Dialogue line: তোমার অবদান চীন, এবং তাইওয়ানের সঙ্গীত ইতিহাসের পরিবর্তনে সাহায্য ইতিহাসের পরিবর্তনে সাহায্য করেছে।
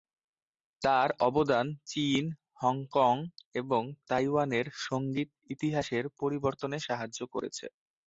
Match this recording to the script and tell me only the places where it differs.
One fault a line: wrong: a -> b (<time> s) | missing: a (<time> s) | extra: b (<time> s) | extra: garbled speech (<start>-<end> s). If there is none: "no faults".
wrong: তোমার -> তার (0.8 s)
extra: হংকং (2.6 s)
missing: ইতিহাসের পরিবর্তনে সাহায্য (7.2 s)